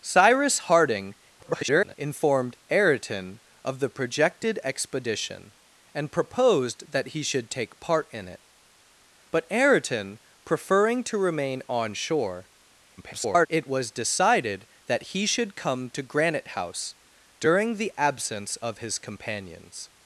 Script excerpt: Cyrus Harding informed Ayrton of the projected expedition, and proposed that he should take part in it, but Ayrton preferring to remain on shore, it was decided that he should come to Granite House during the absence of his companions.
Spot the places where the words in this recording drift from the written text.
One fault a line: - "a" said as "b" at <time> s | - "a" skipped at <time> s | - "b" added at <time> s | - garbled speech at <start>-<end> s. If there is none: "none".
- garbled speech at 1.4-1.9 s
- garbled speech at 13.0-13.5 s